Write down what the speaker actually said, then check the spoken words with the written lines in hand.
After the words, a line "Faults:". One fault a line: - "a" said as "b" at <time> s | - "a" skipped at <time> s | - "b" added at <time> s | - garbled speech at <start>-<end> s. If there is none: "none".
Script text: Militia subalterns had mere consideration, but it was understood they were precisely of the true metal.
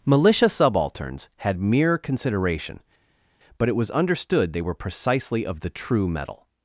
Militia subalterns had mere consideration, but it was understood they were precisely of the true metal.
Faults:
none